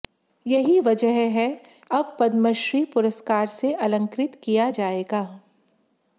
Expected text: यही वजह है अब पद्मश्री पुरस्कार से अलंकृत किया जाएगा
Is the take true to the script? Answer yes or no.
yes